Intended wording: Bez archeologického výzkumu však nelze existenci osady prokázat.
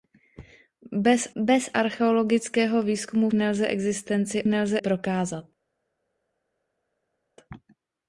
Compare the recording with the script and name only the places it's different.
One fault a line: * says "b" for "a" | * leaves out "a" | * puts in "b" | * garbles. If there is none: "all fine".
* puts in "bez"
* leaves out "však"
* says "nelze" for "osady"